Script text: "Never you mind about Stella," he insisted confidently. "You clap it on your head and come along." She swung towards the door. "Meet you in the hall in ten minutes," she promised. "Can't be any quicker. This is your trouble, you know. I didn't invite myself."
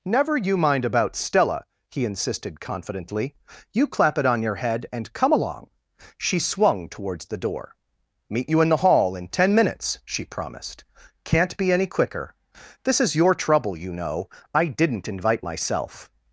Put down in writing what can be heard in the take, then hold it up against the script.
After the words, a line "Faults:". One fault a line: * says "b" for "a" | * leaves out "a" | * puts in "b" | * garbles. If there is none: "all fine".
"Never you mind about Stella," he insisted confidently. "You clap it on your head and come along." She swung towards the door. "Meet you in the hall in ten minutes," she promised. "Can't be any quicker. This is your trouble, you know. I didn't invite myself."
Faults:
all fine